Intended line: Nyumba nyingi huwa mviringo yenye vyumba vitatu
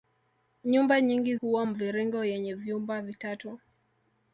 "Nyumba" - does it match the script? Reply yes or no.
yes